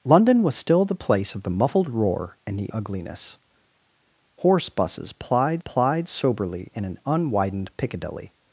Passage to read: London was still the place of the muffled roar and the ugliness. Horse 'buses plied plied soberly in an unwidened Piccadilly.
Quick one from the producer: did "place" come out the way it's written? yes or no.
yes